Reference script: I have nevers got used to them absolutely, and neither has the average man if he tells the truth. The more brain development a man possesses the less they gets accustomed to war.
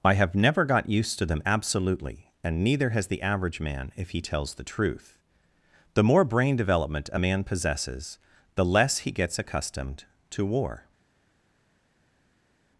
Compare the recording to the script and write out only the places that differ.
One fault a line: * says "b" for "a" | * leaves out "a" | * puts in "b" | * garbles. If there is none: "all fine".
* says "never" for "nevers"
* says "he" for "they"